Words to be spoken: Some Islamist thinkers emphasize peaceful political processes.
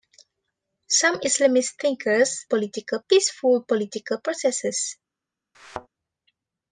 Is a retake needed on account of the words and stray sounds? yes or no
yes